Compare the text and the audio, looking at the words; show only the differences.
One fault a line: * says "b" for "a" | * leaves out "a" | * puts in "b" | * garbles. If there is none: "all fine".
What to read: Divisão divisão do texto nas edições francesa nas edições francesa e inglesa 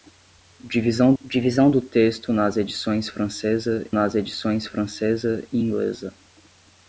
all fine